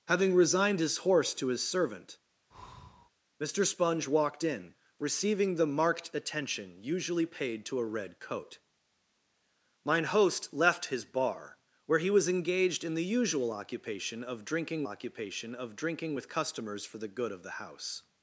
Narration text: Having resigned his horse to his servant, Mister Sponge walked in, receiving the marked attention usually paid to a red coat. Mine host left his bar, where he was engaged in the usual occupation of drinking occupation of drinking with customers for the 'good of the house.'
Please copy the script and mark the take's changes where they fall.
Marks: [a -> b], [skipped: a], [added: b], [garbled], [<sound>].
Having resigned his horse to his servant, [breath] Mister Sponge walked in, receiving the marked attention usually paid to a red coat. Mine host left his bar, where he was engaged in the usual occupation of drinking occupation of drinking with customers for the 'good of the house.'